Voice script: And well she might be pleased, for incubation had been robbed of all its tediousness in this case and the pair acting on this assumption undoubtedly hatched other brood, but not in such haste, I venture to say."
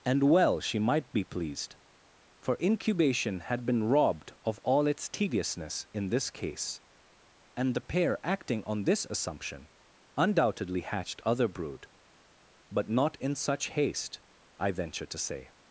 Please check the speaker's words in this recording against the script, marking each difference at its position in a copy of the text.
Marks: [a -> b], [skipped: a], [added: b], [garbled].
And well she might be pleased, for incubation had been robbed of all its tediousness in this case and the pair acting on this assumption undoubtedly hatched other brood, but not in such haste, I venture to say."